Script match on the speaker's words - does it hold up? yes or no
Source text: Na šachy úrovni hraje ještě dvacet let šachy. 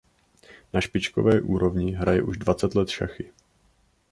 no